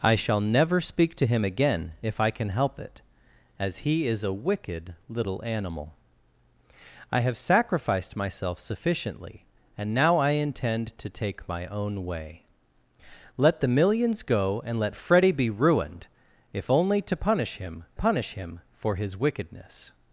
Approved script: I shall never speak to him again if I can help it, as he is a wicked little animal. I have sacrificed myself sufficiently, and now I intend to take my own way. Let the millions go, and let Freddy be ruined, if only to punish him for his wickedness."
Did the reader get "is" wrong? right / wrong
right